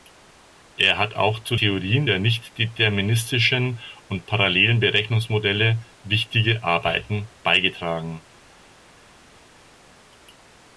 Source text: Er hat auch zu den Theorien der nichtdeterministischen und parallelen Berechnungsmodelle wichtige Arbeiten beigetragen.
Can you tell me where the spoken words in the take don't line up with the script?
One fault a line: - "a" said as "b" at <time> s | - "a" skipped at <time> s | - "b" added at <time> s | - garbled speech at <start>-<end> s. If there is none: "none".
- "den" skipped at 1.6 s